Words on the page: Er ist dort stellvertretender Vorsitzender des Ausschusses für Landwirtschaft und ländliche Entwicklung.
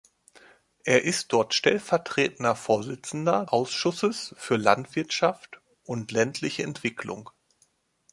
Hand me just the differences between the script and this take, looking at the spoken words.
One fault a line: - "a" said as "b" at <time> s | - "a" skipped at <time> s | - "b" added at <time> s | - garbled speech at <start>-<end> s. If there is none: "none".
- "des" skipped at 3.5 s